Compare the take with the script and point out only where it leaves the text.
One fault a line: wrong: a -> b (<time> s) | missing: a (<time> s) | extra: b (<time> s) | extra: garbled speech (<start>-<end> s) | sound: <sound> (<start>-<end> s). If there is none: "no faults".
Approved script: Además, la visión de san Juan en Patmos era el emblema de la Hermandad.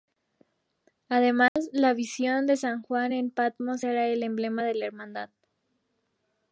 sound: dropout (1.5-1.6 s)